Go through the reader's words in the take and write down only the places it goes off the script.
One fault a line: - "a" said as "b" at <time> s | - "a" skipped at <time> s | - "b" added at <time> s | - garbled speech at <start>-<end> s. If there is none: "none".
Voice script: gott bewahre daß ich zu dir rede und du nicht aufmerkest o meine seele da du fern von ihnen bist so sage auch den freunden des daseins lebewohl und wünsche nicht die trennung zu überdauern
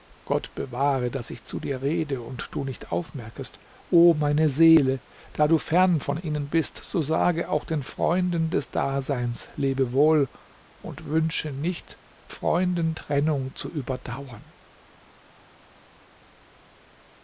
- "die" said as "freunden" at 12.3 s